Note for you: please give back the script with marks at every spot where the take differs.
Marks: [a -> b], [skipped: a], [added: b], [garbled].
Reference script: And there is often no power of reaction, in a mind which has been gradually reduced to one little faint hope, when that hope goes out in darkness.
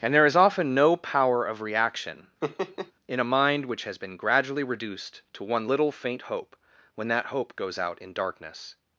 And there is often no power of reaction, in a mind which has been gradually reduced to one little faint hope, when that hope goes out in darkness.